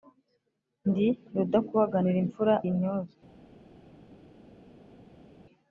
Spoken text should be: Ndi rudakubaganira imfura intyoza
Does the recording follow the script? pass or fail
pass